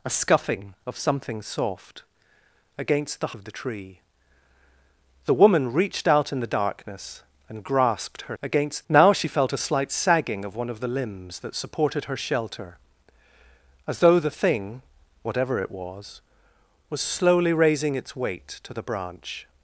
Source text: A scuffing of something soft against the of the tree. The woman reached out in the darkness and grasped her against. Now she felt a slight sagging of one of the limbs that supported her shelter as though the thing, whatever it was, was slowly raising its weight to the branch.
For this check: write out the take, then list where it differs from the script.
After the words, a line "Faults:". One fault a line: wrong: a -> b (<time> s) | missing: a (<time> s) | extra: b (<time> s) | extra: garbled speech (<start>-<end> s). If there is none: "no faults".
A scuffing of something soft against the of the tree. The woman reached out in the darkness and grasped her against. Now she felt a slight sagging of one of the limbs that supported her shelter as though the thing, whatever it was, was slowly raising its weight to the branch.
Faults:
no faults